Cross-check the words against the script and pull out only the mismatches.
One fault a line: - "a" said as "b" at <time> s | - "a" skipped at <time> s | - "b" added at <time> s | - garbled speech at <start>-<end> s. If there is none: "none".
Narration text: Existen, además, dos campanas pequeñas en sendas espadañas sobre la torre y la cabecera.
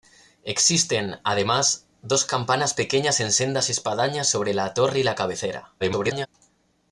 - garbled speech at 5.8-6.3 s